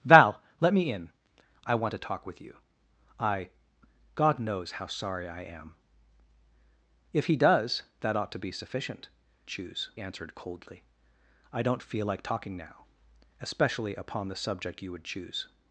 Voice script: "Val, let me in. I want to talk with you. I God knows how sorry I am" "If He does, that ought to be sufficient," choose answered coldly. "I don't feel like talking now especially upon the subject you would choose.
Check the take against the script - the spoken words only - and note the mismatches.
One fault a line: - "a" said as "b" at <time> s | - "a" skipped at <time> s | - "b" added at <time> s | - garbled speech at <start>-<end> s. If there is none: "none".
none